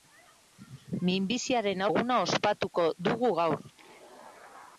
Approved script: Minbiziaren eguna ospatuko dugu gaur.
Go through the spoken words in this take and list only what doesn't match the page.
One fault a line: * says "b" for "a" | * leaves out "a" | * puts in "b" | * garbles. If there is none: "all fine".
all fine